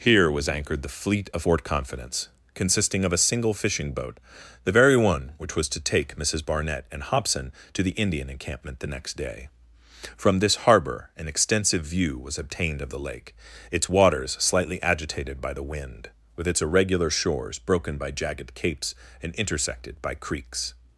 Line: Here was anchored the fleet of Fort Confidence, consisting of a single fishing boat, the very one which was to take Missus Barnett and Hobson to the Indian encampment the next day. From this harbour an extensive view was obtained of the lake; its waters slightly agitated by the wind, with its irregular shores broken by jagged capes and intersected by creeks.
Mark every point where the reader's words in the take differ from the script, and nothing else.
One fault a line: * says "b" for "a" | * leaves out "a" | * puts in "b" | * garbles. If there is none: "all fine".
all fine